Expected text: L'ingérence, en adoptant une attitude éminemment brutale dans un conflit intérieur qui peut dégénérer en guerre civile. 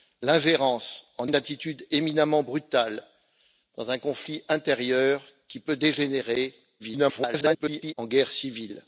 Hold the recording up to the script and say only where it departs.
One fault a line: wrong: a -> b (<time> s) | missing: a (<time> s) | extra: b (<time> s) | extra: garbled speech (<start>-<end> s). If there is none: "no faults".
missing: adoptant (1.3 s)
extra: garbled speech (6.8-7.9 s)